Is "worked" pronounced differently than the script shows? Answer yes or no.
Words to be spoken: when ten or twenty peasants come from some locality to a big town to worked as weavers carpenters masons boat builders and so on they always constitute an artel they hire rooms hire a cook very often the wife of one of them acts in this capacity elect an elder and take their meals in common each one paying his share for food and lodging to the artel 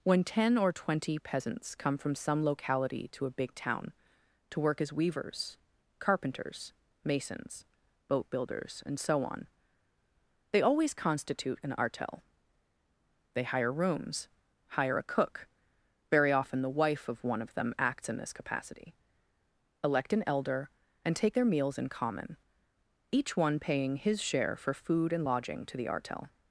yes